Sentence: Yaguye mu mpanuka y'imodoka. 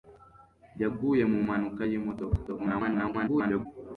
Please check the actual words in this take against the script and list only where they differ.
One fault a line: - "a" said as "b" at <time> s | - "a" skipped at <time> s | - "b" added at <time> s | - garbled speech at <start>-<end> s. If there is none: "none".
- garbled speech at 2.5-3.7 s